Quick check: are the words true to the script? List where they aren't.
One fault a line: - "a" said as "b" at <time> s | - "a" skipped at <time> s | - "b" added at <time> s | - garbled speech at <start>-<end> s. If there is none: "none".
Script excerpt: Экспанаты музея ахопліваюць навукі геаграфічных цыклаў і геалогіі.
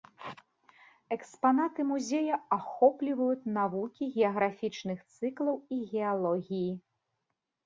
none